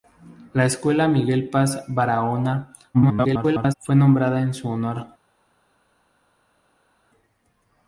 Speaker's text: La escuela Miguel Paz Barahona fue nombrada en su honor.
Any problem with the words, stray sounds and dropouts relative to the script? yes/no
yes